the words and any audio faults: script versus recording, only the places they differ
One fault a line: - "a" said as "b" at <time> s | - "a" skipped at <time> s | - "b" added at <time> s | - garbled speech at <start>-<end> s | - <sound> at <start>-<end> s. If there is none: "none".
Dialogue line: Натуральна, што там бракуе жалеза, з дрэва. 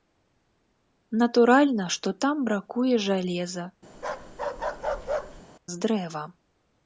- bark at 3.9-5.4 s